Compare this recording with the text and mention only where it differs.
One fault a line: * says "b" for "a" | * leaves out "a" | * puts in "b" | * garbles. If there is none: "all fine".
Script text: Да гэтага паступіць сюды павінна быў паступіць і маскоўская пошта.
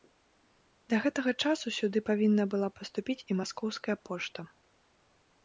* says "часу" for "паступіць"
* says "была" for "быў"